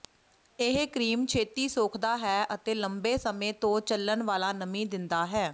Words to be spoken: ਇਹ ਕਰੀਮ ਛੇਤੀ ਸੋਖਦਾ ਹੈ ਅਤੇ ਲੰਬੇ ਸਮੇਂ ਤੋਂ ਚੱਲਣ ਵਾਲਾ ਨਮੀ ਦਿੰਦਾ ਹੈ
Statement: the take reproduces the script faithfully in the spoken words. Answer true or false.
true